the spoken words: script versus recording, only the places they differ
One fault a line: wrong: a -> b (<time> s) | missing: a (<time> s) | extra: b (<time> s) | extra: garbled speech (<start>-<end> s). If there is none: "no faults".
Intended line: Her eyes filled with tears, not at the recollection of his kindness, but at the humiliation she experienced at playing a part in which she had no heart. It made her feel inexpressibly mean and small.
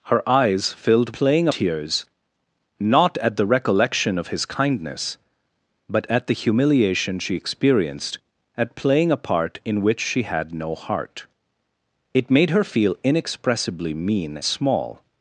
wrong: with -> playing (1.1 s)
missing: and (14.4 s)